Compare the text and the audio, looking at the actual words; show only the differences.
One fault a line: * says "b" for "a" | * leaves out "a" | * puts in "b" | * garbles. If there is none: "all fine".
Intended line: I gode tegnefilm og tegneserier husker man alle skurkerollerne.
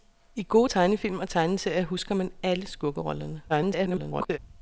* garbles